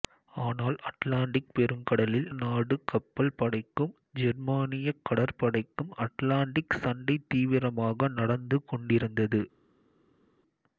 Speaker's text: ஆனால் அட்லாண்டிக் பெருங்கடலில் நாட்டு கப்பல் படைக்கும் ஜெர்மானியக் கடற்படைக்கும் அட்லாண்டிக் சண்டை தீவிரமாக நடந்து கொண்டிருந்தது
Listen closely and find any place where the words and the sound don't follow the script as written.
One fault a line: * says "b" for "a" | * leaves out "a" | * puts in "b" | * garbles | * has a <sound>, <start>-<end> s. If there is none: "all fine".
all fine